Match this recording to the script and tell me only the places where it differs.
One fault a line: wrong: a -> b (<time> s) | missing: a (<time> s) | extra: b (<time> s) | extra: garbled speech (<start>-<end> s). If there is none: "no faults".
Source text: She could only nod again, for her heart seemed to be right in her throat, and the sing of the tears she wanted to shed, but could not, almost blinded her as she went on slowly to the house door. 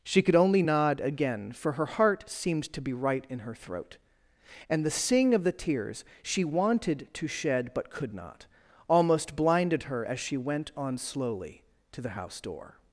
no faults